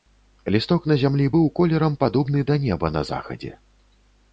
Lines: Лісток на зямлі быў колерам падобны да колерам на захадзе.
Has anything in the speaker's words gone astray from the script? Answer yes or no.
yes